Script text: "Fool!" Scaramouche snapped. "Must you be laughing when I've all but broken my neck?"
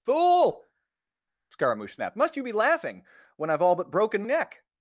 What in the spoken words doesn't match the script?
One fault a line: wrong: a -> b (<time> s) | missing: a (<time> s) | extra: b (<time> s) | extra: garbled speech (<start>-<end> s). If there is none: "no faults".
missing: my (4.2 s)